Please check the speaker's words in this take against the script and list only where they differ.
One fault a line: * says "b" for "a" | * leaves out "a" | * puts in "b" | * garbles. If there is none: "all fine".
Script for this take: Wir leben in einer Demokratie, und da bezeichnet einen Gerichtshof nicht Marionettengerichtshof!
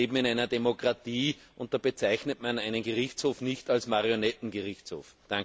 * puts in "man"
* puts in "als"